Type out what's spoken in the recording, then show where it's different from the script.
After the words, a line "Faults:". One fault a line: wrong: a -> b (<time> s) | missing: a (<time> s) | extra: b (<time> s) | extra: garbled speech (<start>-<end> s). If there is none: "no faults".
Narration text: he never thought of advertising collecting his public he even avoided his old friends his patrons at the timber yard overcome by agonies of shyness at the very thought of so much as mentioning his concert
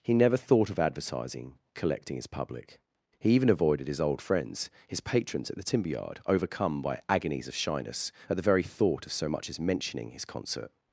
he never thought of advertising collecting his public he even avoided his old friends his patrons at the timber yard overcome by agonies of shyness at the very thought of so much as mentioning his concert
Faults:
no faults